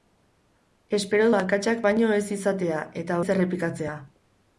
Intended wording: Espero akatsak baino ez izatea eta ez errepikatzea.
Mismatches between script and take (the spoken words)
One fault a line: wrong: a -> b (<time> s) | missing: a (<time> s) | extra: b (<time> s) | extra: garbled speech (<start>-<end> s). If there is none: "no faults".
no faults